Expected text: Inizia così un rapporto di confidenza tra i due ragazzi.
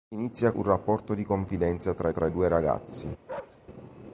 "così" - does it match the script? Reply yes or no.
no